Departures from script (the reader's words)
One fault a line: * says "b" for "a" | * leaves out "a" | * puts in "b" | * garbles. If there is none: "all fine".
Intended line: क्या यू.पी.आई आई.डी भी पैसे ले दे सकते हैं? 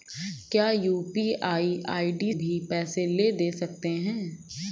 all fine